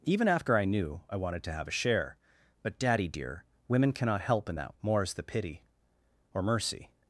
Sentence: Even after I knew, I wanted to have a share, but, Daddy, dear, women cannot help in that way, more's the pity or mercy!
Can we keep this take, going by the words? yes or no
no